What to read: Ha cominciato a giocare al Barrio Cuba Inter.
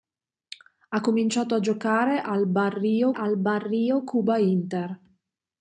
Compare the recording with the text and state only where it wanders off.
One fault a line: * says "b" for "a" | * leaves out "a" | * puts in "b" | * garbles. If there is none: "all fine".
* puts in "al Barrio"